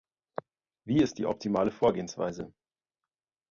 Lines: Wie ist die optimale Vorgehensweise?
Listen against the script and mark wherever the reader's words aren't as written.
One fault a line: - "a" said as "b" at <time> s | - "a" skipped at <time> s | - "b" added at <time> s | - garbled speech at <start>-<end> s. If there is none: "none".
none